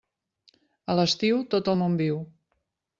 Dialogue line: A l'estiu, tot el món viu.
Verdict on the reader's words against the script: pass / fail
pass